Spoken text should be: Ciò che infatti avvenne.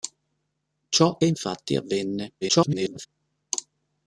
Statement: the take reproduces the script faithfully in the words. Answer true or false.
false